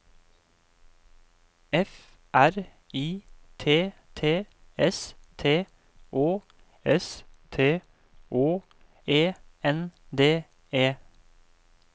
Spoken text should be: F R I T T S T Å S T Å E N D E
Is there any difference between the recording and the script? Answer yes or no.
no